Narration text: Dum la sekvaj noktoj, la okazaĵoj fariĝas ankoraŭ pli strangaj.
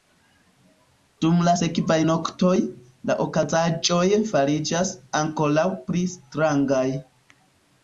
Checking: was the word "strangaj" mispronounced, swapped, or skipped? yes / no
no